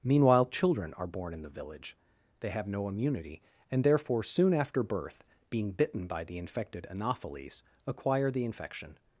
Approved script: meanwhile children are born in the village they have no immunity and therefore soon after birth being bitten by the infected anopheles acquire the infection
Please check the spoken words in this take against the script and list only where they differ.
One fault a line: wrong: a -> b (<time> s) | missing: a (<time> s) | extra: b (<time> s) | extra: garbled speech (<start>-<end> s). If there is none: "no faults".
no faults